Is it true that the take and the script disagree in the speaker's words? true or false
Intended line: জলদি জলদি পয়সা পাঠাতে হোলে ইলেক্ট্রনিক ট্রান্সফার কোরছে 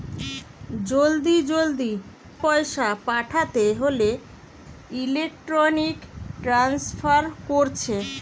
false